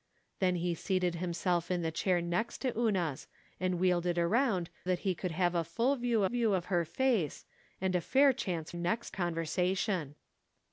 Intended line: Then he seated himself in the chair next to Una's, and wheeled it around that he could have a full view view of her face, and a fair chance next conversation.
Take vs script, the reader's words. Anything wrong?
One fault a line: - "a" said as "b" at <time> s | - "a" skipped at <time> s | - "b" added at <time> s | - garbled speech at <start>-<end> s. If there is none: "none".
none